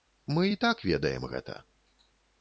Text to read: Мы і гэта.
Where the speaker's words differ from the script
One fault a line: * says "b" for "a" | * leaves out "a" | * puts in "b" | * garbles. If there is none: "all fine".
* puts in "так ведаем"